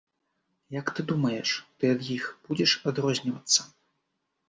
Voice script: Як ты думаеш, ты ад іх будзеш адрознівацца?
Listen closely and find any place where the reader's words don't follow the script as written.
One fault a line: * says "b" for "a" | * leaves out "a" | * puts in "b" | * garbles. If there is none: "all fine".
all fine